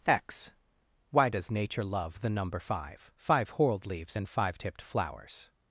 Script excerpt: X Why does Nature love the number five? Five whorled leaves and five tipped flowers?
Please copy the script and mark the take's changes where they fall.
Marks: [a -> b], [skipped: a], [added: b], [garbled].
X Why does Nature love the number five? Five whorled leaves and five tipped flowers?